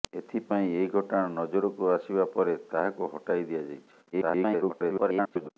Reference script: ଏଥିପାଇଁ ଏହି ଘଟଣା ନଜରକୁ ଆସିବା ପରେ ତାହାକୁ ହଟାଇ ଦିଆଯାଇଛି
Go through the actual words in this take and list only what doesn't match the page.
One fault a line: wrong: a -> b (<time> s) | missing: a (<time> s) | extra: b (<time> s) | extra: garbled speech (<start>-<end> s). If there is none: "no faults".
extra: garbled speech (4.1-5.5 s)